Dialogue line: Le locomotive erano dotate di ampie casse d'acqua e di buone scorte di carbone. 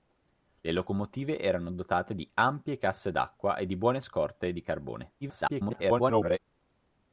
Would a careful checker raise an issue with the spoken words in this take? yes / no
yes